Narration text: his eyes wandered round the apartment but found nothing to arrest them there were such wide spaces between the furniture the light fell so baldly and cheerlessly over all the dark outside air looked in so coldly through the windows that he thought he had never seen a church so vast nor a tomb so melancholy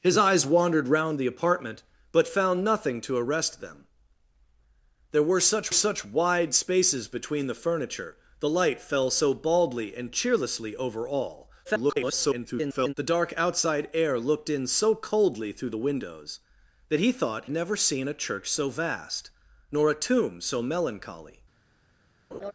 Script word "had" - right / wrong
wrong